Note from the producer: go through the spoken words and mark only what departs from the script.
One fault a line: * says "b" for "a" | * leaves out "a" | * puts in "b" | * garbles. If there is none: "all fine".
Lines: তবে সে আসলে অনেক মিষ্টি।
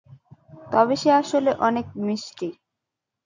all fine